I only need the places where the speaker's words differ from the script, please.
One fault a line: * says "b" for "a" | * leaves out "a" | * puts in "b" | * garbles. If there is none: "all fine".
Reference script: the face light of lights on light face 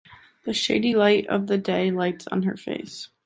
* says "shady" for "face"
* puts in "the day"
* says "her" for "light"